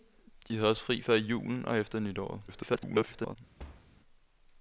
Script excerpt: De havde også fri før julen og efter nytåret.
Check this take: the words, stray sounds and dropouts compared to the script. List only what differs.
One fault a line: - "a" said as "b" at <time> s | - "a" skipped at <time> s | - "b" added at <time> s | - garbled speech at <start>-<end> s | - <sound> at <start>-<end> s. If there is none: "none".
- garbled speech at 2.5-3.4 s
- thud at 3.6-3.9 s